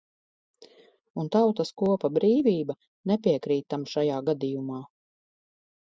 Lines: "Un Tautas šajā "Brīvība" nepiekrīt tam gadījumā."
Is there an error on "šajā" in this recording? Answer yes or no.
yes